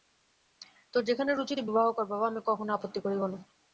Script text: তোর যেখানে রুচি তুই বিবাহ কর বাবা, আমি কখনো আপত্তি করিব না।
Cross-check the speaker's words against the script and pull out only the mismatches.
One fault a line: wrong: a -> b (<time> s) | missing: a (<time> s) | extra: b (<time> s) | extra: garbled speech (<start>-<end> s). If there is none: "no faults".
no faults